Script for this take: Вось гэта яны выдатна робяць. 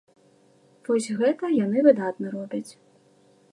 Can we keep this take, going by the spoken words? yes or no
yes